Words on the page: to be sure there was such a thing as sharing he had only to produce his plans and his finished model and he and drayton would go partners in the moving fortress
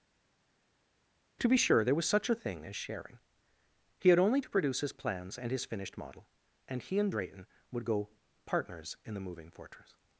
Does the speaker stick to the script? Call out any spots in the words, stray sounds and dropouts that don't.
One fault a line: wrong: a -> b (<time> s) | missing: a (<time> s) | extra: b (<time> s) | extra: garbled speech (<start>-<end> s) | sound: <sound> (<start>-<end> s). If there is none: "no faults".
no faults